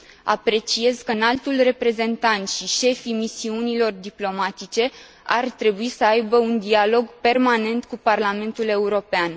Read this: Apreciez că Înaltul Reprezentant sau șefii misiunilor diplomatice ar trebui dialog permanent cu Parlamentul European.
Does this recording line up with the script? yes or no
no